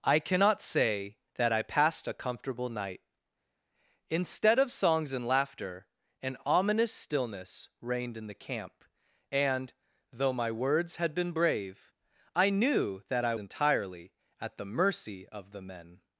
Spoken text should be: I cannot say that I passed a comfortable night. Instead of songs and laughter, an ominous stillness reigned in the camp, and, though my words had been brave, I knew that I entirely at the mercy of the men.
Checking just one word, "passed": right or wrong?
right